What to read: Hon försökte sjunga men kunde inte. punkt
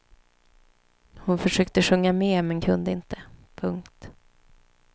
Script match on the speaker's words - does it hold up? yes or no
no